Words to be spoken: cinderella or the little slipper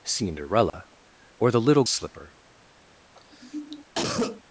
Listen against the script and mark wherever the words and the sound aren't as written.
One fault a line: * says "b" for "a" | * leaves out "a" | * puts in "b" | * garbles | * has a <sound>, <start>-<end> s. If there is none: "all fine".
* has a dropout, 0.7-0.7 s
* has a cough, 3.1-4.4 s